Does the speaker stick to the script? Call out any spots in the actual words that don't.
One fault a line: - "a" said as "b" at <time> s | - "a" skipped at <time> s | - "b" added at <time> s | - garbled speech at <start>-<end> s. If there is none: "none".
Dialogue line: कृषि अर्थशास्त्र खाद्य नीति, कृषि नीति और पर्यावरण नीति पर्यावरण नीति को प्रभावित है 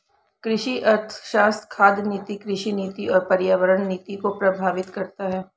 - "पर्यावरण नीति" skipped at 4.2 s
- "करता" added at 4.9 s